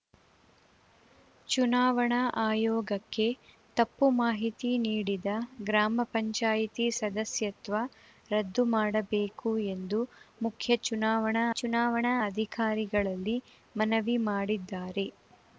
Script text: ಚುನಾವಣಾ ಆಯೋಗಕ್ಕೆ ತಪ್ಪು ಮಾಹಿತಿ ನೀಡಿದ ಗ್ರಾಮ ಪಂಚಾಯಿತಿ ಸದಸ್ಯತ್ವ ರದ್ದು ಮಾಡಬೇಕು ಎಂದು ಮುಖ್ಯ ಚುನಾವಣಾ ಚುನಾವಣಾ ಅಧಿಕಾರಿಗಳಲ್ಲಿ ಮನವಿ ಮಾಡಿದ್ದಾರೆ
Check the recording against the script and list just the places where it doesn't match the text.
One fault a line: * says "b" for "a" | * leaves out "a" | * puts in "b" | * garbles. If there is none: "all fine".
all fine